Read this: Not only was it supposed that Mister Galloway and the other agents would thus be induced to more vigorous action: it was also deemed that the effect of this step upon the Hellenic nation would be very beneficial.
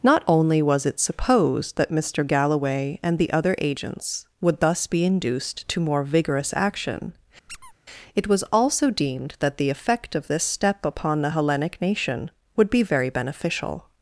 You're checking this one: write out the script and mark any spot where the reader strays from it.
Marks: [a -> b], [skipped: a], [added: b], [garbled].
Not only was it supposed that Mister Galloway and the other agents would thus be induced to more vigorous action: it was also deemed that the effect of this step upon the Hellenic nation would be very beneficial.